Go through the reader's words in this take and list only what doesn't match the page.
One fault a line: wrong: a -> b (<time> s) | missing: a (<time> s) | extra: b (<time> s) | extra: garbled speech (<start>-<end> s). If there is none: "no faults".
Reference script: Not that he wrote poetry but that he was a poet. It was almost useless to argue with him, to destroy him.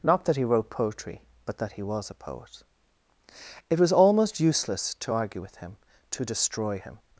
no faults